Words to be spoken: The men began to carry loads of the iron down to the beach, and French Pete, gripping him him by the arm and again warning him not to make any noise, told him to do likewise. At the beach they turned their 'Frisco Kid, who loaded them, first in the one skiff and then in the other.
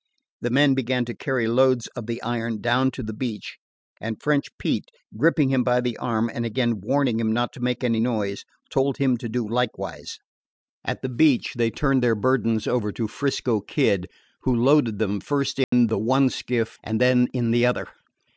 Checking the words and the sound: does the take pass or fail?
fail